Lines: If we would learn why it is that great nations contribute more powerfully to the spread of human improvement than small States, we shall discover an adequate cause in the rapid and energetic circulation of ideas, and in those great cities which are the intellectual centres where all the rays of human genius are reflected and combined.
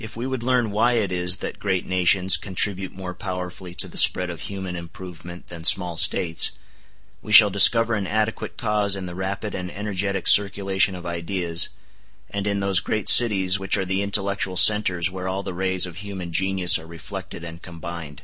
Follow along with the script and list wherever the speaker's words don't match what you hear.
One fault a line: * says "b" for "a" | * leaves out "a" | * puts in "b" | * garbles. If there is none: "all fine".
all fine